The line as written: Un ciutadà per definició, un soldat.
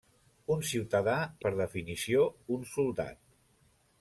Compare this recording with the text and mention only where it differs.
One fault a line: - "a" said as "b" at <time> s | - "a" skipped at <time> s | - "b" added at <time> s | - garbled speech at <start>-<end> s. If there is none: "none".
none